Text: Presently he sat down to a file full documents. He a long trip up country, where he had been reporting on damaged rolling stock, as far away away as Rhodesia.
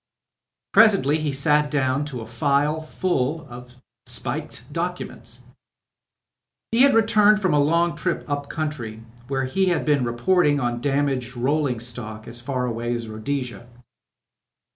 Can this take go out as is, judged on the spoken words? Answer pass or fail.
fail